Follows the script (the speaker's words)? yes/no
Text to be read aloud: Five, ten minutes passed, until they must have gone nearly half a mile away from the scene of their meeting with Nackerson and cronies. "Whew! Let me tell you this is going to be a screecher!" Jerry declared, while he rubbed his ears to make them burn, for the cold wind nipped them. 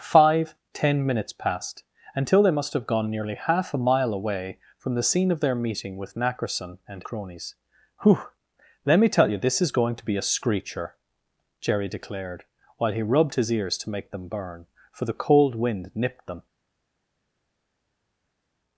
yes